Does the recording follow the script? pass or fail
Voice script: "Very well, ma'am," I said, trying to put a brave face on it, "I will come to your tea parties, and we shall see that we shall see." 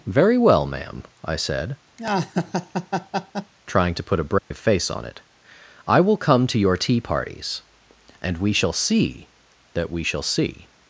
pass